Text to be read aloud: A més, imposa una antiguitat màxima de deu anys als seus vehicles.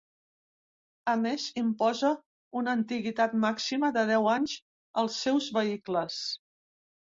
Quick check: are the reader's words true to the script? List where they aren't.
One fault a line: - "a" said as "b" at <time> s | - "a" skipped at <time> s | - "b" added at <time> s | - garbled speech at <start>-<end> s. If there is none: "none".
none